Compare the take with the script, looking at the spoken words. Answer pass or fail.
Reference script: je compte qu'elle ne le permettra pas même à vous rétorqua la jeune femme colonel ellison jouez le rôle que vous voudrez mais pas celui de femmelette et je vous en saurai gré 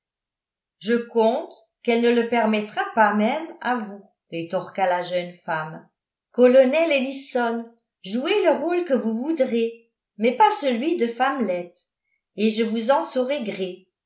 pass